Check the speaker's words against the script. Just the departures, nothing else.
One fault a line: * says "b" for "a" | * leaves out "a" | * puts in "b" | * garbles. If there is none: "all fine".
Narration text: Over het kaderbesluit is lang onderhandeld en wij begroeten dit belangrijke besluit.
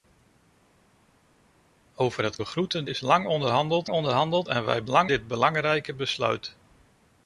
* says "begroeten" for "kaderbesluit"
* puts in "onderhandeld"
* says "lang" for "begroeten"